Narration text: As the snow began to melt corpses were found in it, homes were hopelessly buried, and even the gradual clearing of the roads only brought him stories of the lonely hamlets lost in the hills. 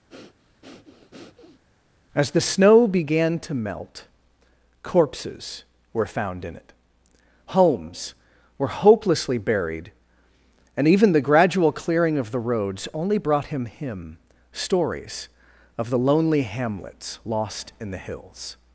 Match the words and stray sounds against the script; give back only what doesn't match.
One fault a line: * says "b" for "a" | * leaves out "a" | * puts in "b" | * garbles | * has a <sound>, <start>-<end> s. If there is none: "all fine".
* has a breath, 0.1-1.6 s
* puts in "him"